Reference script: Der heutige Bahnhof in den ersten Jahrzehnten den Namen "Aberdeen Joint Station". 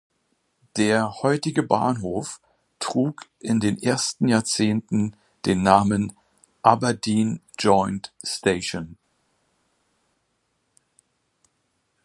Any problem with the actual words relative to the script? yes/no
yes